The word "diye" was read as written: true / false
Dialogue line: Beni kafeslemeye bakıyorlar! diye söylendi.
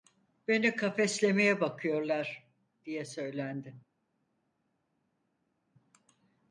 true